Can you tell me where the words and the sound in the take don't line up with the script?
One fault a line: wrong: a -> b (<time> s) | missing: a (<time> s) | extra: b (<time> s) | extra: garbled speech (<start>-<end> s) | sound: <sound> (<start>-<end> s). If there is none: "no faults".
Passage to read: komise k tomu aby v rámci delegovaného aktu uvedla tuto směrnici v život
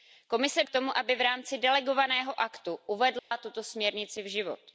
sound: dropout (3.2-3.3 s)